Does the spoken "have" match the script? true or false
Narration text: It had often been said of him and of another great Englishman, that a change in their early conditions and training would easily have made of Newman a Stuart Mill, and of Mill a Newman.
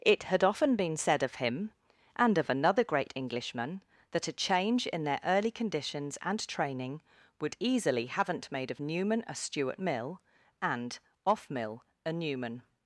false